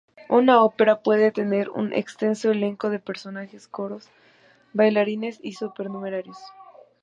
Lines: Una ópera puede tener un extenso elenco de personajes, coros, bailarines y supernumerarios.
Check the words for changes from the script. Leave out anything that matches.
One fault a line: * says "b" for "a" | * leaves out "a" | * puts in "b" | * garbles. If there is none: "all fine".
all fine